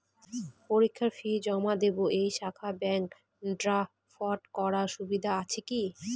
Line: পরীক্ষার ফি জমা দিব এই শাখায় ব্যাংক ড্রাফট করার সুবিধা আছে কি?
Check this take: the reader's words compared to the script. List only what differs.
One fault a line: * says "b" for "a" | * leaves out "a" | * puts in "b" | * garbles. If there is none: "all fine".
all fine